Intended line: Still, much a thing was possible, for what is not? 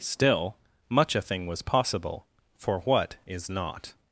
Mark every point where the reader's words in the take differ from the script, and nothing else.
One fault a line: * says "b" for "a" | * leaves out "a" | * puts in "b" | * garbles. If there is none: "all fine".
all fine